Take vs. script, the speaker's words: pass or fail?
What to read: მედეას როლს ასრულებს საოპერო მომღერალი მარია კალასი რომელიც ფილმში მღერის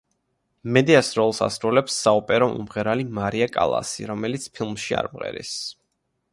fail